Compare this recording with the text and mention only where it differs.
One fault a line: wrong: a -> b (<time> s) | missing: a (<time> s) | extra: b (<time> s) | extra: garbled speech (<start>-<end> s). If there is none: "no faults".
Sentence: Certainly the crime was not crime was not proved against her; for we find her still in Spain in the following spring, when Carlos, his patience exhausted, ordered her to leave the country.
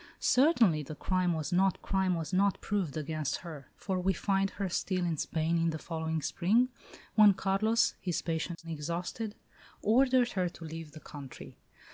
no faults